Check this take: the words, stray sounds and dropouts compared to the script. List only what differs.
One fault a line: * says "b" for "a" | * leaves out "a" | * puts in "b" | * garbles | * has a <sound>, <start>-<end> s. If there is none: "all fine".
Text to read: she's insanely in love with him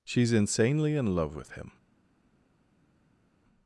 all fine